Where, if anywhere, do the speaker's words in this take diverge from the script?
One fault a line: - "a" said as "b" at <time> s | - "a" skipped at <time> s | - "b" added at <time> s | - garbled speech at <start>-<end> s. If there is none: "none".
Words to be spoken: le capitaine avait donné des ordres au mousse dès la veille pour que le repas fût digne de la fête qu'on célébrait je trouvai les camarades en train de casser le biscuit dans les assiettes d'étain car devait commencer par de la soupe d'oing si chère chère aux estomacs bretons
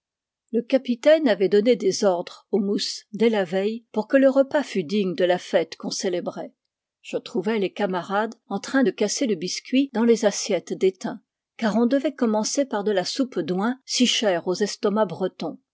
- "on" added at 11.8 s
- "chère" skipped at 14.5 s